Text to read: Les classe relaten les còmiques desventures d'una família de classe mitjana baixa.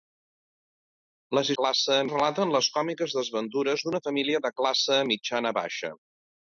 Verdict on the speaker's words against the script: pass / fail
pass